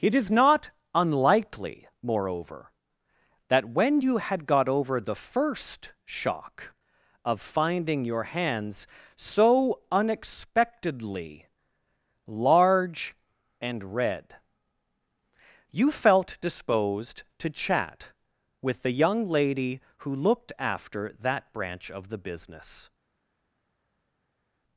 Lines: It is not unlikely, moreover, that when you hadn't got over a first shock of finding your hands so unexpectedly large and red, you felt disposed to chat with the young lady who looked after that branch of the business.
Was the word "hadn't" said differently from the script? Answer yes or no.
yes